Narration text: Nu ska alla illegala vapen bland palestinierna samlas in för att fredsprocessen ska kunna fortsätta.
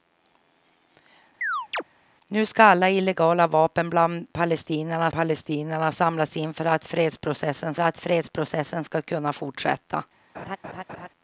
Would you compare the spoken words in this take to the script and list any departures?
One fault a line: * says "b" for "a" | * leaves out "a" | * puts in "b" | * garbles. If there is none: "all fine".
* puts in "palestinierna"
* puts in "att fredsprocessen"